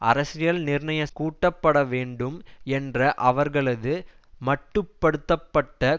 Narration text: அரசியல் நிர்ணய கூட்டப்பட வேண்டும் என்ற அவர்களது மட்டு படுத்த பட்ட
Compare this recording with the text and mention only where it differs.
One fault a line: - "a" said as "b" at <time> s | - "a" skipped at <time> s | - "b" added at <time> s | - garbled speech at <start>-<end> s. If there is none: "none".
none